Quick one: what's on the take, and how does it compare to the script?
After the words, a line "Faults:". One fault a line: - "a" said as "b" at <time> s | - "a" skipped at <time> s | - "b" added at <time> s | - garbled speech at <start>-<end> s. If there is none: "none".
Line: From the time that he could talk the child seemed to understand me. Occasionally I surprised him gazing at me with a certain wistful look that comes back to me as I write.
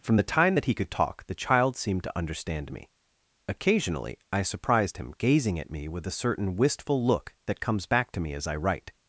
From the time that he could talk the child seemed to understand me. Occasionally I surprised him gazing at me with a certain wistful look that comes back to me as I write.
Faults:
none